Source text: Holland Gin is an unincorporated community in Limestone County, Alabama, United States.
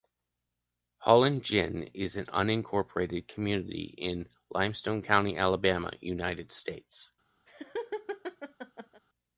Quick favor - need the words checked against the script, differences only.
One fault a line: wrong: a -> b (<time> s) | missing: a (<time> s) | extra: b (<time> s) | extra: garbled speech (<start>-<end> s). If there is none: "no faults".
no faults